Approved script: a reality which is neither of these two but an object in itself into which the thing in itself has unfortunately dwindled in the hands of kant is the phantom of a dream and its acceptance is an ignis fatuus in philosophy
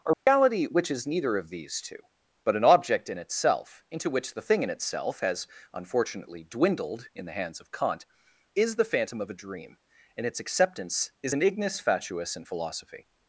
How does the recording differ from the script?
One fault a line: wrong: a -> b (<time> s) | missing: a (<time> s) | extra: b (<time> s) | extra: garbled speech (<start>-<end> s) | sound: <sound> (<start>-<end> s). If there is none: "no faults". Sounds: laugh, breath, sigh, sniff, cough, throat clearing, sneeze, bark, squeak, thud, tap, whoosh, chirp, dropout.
sound: dropout (0.1-0.3 s)